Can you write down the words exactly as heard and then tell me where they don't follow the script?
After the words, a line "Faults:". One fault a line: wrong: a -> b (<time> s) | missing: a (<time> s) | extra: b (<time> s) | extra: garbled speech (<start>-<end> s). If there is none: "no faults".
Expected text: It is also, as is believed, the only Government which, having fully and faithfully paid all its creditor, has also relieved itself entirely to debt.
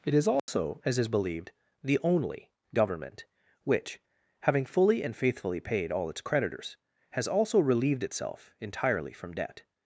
It is also, as is believed, the only Government which, having fully and faithfully paid all its creditors, has also relieved itself entirely from debt.
Faults:
wrong: creditor -> creditors (6.2 s)
wrong: to -> from (9.1 s)